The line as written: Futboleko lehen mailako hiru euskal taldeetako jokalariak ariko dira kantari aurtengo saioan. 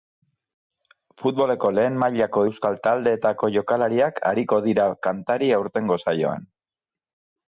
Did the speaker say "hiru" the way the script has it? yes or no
no